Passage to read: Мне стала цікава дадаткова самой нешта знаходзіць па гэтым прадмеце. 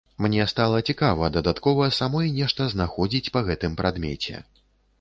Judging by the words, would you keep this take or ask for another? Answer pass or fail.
pass